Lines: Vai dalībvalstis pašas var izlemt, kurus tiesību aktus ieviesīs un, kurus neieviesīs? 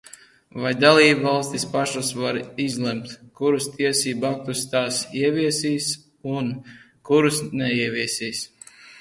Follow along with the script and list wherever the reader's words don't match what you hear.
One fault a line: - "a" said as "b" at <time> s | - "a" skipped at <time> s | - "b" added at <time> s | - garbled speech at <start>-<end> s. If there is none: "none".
- "tās" added at 4.8 s